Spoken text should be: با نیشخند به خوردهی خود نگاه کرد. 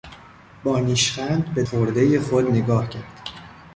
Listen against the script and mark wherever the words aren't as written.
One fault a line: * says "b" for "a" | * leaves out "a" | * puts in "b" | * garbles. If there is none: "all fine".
all fine